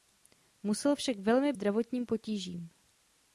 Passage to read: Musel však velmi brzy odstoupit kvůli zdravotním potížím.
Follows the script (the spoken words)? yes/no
no